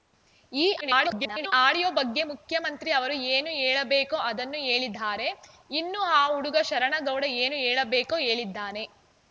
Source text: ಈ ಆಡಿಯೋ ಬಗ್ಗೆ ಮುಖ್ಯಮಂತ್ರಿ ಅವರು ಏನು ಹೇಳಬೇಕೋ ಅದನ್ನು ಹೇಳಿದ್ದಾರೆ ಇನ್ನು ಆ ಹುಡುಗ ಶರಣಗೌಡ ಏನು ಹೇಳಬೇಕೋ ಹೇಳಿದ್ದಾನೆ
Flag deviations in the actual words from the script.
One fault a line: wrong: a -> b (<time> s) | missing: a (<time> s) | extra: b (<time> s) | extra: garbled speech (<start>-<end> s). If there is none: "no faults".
extra: garbled speech (0.8-1.5 s)